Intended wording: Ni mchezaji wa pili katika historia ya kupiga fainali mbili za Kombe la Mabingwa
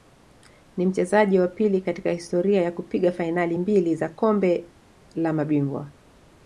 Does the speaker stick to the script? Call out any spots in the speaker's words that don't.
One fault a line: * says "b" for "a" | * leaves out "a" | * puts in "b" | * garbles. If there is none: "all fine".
all fine